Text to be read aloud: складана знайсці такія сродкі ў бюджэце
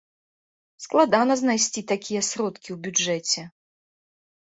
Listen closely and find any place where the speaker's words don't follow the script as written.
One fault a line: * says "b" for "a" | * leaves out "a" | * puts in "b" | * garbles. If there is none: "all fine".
all fine